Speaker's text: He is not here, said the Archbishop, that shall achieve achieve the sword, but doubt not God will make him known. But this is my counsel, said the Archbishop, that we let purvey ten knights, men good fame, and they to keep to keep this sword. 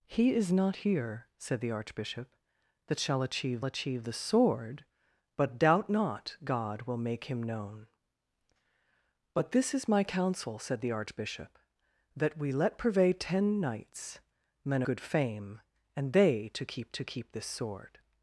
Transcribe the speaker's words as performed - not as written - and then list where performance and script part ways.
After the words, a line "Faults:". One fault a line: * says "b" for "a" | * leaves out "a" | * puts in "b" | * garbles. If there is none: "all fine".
He is not here, said the Archbishop, that shall achieve achieve the sword, but doubt not God will make him known. But this is my counsel, said the Archbishop, that we let purvey ten knights, men good fame, and they to keep to keep this sword.
Faults:
all fine